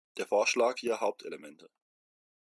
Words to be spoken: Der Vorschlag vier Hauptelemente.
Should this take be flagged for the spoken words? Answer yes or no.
no